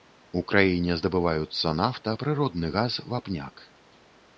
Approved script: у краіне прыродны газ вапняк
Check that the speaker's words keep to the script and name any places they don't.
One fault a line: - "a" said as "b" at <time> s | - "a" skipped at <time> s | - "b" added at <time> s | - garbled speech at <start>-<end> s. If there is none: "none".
- "здабываюцца нафта" added at 1.0 s